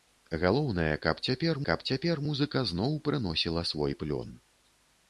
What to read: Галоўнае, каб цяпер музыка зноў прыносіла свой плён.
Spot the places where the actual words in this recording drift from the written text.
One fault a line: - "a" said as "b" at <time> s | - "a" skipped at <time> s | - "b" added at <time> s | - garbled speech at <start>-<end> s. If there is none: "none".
- "каб цяпер" added at 1.7 s